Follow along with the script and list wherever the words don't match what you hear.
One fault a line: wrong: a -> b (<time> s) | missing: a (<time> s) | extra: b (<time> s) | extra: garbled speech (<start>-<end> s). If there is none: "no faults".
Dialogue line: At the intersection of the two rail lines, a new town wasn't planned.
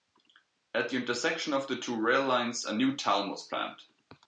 wrong: wasn't -> was (3.3 s)